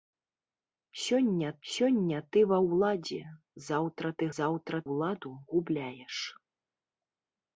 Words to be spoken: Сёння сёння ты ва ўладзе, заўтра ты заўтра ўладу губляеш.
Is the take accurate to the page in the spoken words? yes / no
yes